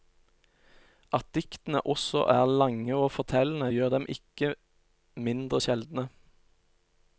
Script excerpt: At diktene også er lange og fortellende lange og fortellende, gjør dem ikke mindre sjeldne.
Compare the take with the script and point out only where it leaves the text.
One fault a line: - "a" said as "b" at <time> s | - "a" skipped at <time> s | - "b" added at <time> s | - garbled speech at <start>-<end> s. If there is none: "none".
- "lange og fortellende" skipped at 3.7 s